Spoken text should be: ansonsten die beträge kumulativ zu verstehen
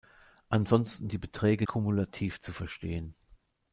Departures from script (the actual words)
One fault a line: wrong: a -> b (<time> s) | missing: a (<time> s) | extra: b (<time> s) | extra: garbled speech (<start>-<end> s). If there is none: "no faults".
no faults